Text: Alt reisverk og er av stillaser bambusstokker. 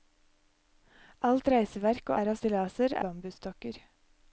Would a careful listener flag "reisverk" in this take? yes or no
no